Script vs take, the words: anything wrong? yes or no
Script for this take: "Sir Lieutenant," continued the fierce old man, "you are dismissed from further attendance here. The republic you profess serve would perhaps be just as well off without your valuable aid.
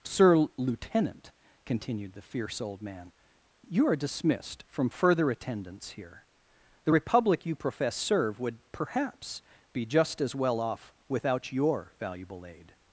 no